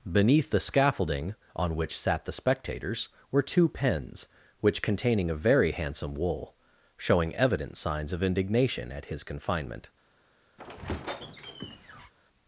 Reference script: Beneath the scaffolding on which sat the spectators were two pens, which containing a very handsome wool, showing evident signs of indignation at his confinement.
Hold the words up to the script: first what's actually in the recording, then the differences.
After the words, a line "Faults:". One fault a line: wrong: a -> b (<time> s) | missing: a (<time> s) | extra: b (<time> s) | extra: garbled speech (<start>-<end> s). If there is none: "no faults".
Beneath the scaffolding on which sat the spectators were two pens, which containing a very handsome wool, showing evident signs of indignation at his confinement.
Faults:
no faults